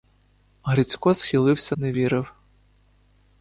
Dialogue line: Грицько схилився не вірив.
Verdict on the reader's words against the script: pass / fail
pass